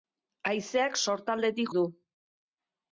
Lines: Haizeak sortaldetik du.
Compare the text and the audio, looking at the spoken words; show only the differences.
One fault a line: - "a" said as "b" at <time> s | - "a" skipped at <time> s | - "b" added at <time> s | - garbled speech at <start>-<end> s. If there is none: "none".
none